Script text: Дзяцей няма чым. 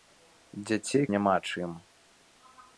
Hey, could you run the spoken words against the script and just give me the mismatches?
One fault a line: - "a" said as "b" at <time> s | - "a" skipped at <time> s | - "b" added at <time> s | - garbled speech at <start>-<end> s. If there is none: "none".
none